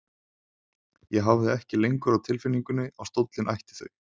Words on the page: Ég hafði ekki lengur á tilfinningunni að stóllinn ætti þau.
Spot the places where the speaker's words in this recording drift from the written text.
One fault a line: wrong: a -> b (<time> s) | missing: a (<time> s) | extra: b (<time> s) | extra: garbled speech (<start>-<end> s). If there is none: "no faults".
no faults